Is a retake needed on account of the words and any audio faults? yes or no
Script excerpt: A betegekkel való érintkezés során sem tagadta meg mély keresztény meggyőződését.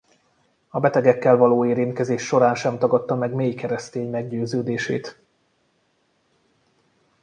no